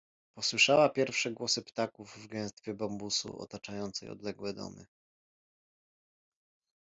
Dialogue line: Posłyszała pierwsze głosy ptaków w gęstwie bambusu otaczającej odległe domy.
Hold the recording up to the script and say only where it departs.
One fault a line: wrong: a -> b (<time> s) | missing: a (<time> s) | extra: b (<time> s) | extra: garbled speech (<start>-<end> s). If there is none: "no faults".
no faults